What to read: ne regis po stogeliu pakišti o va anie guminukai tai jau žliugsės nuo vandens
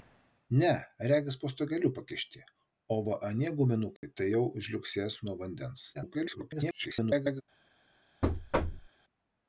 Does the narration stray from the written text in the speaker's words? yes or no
yes